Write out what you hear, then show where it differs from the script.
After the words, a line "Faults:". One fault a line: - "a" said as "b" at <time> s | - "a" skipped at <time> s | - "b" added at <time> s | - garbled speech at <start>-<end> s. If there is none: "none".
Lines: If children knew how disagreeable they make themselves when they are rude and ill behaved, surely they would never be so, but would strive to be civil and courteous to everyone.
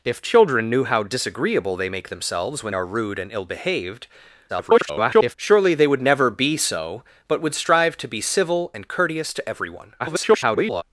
If children knew how disagreeable they make themselves when are rude and ill behaved, [garbled] surely they would never be so, but would strive to be civil and courteous to everyone. [garbled]
Faults:
- "they" skipped at 2.8 s
- garbled speech at 4.5-5.4 s
- garbled speech at 10.0-10.8 s